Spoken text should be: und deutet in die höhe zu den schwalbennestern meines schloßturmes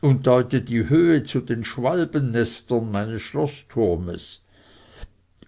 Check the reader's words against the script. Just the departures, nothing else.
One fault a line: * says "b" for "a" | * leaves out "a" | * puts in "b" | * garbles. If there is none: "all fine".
* leaves out "in"